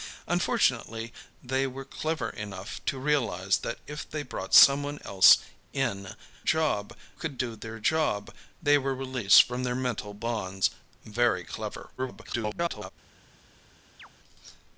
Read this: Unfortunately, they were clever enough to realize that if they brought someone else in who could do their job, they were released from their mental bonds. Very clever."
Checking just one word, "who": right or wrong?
wrong